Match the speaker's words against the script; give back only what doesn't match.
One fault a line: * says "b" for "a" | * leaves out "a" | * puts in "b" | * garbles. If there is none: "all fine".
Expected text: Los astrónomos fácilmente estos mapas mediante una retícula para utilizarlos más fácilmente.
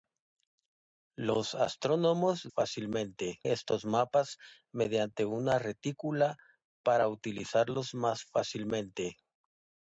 all fine